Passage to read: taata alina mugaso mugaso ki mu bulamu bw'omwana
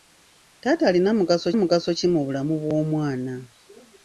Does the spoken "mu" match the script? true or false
true